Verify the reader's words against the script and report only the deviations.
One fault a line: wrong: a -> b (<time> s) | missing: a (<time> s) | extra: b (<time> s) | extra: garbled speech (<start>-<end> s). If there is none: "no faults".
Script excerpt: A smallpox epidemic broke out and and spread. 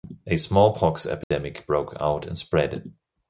missing: and (2.4 s)